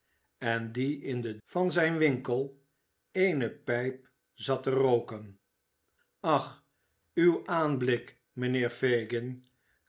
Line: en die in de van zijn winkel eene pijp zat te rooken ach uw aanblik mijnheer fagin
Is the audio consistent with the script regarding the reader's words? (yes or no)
yes